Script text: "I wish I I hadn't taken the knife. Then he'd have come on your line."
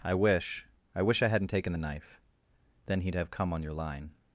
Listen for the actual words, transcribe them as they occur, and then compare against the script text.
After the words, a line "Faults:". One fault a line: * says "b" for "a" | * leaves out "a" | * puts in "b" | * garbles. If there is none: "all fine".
"I wish I wish I hadn't taken the knife. Then he'd have come on your line."
Faults:
* puts in "wish"